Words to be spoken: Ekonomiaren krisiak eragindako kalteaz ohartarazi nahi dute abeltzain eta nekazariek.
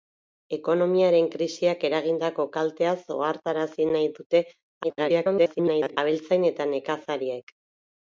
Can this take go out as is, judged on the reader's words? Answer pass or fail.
fail